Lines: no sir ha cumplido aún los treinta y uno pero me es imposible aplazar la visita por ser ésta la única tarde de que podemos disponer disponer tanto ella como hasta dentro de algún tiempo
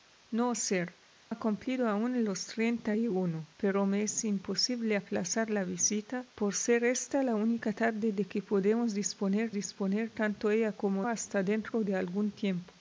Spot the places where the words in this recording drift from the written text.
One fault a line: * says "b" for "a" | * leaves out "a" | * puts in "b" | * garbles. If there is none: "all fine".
all fine